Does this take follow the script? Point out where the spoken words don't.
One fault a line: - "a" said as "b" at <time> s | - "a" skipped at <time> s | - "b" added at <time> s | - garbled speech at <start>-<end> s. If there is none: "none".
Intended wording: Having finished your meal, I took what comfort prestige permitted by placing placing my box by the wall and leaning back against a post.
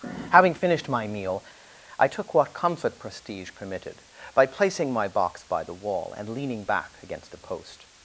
- "your" said as "my" at 0.9 s
- "placing" skipped at 4.9 s